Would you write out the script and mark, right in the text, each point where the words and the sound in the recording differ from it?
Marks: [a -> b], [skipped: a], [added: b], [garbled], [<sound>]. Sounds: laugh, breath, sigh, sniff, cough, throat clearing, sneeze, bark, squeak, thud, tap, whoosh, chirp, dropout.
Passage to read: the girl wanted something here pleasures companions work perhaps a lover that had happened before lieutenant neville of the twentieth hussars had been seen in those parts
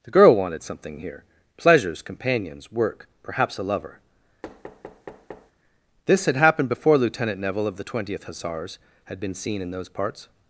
the girl wanted something here pleasures companions work perhaps a lover [thud] [that -> this] had happened before lieutenant neville of the twentieth hussars had been seen in those parts